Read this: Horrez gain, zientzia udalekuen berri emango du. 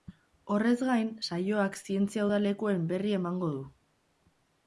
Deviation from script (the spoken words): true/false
true